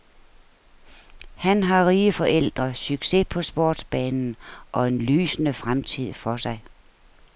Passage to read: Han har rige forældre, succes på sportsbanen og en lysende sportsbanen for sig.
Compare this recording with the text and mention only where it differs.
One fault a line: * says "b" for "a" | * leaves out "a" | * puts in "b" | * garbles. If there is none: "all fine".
* says "fremtid" for "sportsbanen"